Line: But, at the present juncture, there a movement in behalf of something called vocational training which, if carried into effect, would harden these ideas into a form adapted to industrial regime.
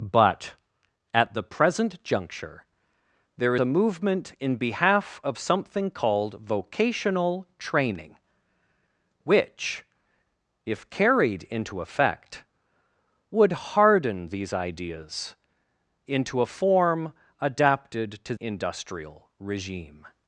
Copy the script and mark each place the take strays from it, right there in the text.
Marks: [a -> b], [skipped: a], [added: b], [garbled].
But, at the present juncture, there a movement in behalf of something called vocational training which, if carried into effect, would harden these ideas into a form adapted to industrial regime.